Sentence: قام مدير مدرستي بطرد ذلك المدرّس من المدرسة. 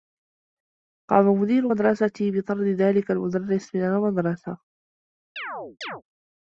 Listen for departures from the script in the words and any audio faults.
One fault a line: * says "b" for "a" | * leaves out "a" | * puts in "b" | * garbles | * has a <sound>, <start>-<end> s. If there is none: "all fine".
* has a chirp, 5.4-6.0 s